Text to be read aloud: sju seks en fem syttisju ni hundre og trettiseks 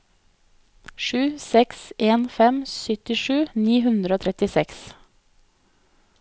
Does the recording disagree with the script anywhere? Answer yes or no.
no